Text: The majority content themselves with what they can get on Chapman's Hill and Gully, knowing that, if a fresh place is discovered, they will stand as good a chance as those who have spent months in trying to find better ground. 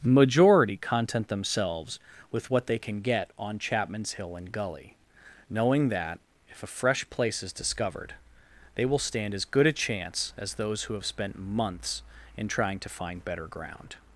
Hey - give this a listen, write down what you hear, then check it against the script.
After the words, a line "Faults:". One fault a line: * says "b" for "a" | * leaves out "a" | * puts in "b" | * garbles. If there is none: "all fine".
majority content themselves with what they can get on Chapman's Hill and Gully, knowing that, if a fresh place is discovered, they will stand as good a chance as those who have spent months in trying to find better ground.
Faults:
* leaves out "The"